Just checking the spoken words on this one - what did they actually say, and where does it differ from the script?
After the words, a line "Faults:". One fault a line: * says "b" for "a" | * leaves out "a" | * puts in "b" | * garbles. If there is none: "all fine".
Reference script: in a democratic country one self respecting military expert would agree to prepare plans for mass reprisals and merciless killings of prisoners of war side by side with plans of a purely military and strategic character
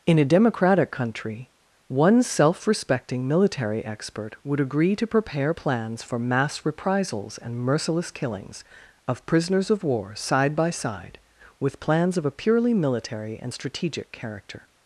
in a democratic country one self respecting military expert would agree to prepare plans for mass reprisals and merciless killings of prisoners of war side by side with plans of a purely military and strategic character
Faults:
all fine